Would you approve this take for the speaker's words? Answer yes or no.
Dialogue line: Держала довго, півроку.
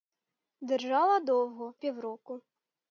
yes